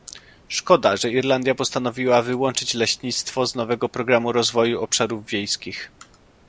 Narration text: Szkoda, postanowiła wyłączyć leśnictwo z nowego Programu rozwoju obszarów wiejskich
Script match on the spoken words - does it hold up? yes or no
no